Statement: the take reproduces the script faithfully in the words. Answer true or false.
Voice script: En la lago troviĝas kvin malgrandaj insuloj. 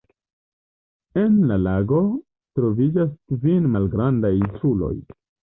true